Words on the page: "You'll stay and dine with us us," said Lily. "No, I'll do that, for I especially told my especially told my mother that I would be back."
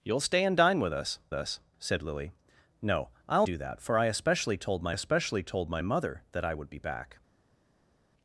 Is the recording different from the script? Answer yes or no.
no